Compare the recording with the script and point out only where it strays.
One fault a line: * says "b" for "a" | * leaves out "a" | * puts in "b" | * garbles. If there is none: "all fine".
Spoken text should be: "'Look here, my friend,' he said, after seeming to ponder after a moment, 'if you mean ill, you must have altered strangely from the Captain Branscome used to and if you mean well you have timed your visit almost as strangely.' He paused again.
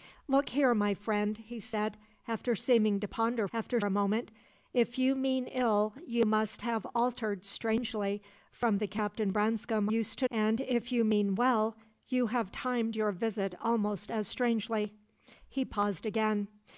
all fine